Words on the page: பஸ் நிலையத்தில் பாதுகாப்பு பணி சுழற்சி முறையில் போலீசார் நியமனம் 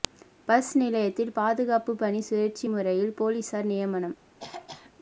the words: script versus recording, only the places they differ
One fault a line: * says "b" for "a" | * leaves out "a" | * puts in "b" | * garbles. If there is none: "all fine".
all fine